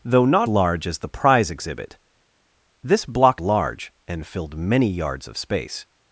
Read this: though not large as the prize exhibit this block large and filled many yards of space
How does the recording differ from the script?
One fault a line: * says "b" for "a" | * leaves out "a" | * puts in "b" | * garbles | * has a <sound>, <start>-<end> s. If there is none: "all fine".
all fine